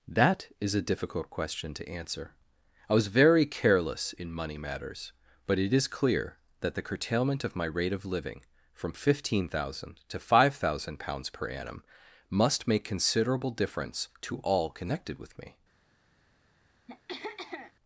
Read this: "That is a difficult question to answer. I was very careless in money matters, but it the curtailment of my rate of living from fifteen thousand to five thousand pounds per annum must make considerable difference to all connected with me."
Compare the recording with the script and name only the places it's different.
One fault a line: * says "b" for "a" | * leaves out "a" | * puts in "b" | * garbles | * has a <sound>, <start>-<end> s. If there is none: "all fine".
* puts in "is clear that"
* has a throat clearing, 16.9-17.7 s